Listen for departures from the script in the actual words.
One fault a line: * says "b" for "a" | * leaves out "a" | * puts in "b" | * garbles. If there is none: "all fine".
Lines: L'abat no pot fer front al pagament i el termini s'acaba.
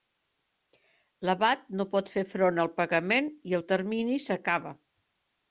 all fine